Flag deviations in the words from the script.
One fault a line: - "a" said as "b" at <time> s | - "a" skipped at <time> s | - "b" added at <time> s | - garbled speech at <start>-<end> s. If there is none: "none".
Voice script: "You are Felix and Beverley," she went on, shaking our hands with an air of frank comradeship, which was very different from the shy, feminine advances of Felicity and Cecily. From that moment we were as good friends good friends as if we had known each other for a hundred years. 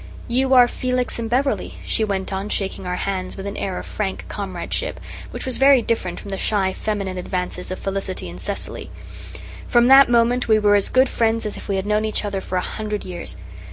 - "good friends" skipped at 11.5 s